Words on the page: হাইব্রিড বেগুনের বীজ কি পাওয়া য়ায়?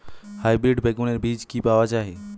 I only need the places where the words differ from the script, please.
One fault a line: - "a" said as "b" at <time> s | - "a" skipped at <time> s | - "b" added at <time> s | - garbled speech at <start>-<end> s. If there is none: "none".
none